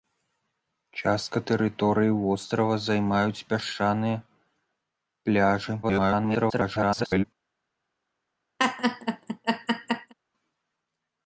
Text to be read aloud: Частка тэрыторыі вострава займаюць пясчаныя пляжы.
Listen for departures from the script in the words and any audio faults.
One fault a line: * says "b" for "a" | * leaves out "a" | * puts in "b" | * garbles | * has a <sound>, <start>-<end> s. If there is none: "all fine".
* garbles
* has a laugh, 8.6-10.1 s